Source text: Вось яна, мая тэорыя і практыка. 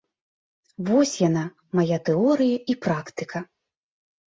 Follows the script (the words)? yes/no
yes